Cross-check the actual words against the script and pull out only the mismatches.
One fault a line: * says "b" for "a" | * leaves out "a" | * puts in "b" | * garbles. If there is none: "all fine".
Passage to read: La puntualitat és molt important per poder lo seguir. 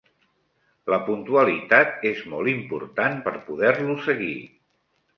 all fine